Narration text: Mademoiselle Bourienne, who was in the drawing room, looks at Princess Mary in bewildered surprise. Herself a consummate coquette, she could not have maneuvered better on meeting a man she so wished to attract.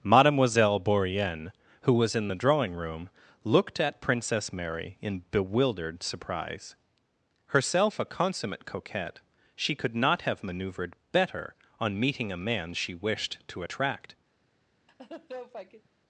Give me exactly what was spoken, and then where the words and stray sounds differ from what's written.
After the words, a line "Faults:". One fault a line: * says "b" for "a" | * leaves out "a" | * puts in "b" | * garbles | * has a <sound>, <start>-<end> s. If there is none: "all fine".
Mademoiselle Bourienne, who was in the drawing room, looked at Princess Mary in bewildered surprise. Herself a consummate coquette, she could not have maneuvered better on meeting a man she wished to attract.
Faults:
* says "looked" for "looks"
* leaves out "so"
* has a laugh, 14.9-15.9 s